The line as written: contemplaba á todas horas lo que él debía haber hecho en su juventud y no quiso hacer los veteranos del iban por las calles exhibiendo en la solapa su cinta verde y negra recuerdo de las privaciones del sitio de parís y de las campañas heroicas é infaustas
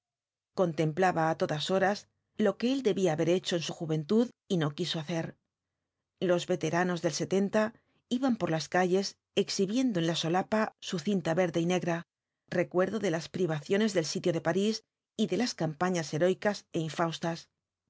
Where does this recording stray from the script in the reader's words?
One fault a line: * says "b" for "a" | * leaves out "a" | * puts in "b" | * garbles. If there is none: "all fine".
all fine